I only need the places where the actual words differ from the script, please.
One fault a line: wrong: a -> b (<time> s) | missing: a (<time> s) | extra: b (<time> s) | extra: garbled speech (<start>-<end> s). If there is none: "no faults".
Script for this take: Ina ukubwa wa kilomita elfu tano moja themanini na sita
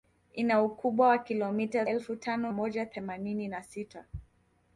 no faults